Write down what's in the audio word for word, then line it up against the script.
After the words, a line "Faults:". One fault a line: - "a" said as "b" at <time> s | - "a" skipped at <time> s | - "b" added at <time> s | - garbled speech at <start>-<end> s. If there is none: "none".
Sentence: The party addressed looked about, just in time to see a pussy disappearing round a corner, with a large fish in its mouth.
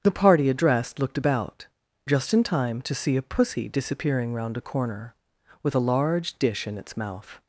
The party addressed looked about, just in time to see a pussy disappearing round a corner, with a large dish in its mouth.
Faults:
- "fish" said as "dish" at 6.4 s